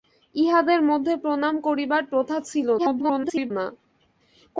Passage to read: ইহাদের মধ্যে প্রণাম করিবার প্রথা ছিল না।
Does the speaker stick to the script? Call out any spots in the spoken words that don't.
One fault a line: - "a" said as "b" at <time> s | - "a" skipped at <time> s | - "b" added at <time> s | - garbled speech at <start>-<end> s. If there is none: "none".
- garbled speech at 2.8-3.5 s